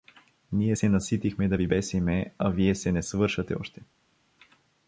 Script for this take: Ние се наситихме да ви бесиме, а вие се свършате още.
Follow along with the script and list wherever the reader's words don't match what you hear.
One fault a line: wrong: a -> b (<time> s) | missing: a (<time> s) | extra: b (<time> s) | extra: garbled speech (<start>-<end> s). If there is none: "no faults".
extra: не (2.9 s)